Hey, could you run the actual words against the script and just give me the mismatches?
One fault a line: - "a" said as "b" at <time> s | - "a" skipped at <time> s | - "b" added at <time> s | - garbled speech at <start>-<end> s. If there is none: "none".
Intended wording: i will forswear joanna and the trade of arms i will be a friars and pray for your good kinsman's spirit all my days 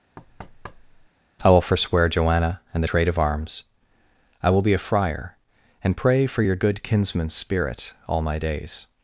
- "friars" said as "friar" at 4.8 s